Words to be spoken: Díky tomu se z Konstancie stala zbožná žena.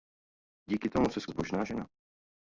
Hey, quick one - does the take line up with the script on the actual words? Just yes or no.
no